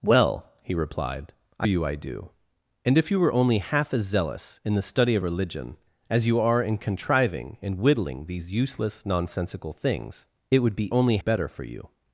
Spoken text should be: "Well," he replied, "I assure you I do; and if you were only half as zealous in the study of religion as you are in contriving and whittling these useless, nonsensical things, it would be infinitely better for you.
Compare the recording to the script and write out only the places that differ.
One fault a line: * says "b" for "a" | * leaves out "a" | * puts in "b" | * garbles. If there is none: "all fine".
* leaves out "assure"
* says "only" for "infinitely"